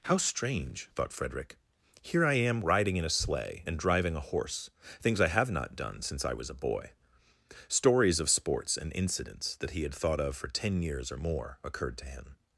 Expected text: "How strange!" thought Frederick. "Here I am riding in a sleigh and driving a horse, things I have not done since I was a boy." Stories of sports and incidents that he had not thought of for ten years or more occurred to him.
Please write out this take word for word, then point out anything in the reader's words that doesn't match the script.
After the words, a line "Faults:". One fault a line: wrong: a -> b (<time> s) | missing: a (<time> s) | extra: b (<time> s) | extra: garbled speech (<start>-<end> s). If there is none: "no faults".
"How strange!" thought Frederick. "Here I am riding in a sleigh and driving a horse, things I have not done since I was a boy." Stories of sports and incidents that he had thought of for ten years or more occurred to him.
Faults:
missing: not (9.9 s)